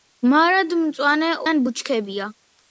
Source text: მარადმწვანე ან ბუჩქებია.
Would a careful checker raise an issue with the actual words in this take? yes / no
no